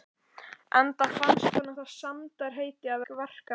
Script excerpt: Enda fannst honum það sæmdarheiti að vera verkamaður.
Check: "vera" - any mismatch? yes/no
yes